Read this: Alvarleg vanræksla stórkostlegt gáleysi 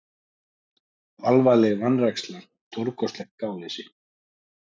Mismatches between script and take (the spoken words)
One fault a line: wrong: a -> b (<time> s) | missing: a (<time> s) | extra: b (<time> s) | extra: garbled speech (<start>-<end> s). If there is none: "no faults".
no faults